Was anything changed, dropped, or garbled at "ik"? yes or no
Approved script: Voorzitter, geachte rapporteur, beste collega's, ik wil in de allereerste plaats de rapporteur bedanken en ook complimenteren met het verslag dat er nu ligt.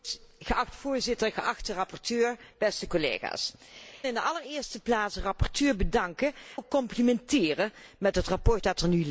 yes